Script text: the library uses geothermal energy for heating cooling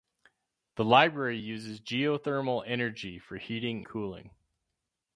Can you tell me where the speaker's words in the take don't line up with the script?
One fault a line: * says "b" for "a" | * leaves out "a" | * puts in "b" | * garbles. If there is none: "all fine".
all fine